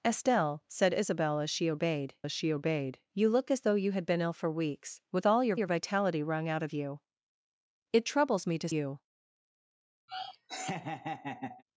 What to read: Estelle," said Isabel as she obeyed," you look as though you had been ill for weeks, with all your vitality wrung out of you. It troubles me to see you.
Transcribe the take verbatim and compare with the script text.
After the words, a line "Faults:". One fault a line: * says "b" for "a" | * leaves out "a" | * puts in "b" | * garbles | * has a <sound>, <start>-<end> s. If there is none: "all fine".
Estelle," said Isabel as she obeyed as she obeyed," you look as though you had been ill for weeks, with all your your vitality wrung out of you. It troubles me to you.
Faults:
* puts in "as she obeyed"
* puts in "your"
* leaves out "see"
* has a laugh, 10.1-11.6 s